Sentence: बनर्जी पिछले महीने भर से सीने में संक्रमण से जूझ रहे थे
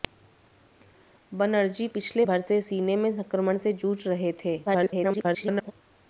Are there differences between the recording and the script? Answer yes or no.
yes